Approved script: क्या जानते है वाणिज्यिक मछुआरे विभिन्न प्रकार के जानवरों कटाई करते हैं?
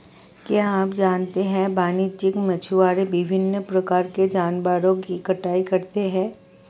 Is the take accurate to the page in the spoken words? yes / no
no